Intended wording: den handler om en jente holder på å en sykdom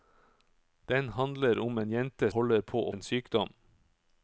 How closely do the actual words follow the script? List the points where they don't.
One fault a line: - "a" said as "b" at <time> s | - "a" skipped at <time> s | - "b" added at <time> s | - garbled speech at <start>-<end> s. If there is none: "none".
none